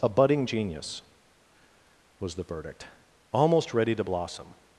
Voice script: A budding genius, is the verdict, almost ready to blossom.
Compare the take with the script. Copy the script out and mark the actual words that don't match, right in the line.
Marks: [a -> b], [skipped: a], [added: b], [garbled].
A budding genius, [is -> was] the verdict, almost ready to blossom.